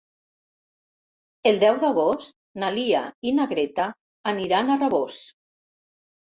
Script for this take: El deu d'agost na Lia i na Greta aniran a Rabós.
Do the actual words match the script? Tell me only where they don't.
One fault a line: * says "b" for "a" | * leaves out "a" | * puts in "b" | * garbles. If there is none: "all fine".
all fine